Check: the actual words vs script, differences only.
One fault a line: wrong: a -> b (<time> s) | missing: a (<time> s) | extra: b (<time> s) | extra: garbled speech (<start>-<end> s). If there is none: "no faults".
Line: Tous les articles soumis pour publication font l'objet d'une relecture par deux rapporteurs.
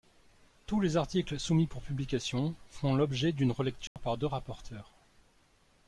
no faults